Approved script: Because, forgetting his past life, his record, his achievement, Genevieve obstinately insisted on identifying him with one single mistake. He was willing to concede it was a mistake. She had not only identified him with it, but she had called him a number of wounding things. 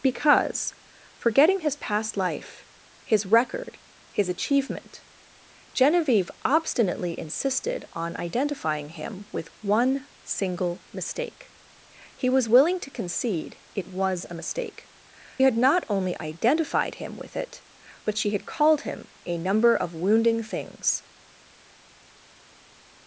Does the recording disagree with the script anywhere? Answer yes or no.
yes